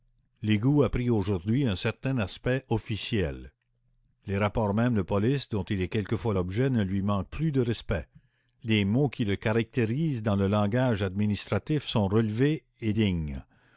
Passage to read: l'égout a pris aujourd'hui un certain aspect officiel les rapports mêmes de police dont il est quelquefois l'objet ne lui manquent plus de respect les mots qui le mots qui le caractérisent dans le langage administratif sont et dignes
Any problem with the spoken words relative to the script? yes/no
yes